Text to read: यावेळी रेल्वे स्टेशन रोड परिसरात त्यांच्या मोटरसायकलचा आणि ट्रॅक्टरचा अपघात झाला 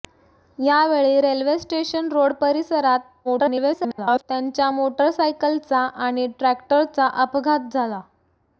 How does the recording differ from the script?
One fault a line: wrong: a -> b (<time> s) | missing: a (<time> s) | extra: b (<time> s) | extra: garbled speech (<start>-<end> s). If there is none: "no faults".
extra: garbled speech (3.2-4.2 s)